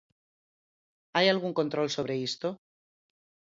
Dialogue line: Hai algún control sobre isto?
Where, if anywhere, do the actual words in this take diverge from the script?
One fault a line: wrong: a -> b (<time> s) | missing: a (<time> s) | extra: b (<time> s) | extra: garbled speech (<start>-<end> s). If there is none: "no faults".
no faults